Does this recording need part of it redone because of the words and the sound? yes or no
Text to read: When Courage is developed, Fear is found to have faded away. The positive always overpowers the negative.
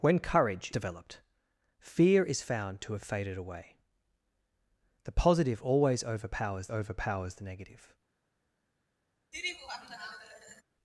yes